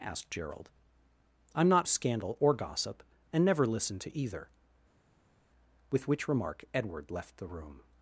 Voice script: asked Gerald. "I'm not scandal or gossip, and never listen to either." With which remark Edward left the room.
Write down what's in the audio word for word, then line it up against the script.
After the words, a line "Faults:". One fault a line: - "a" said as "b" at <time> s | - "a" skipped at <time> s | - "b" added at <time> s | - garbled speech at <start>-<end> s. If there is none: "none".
asked Gerald. "I'm not scandal or gossip, and never listen to either." With which remark Edward left the room.
Faults:
none